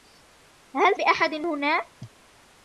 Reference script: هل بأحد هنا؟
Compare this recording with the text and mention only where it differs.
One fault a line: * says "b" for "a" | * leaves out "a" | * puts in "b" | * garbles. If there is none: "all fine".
all fine